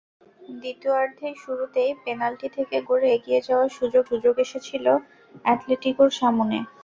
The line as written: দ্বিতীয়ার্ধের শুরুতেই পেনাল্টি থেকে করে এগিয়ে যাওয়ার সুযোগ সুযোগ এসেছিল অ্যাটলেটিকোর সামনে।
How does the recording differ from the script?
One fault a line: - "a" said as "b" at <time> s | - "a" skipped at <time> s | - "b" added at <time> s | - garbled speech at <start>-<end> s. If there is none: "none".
none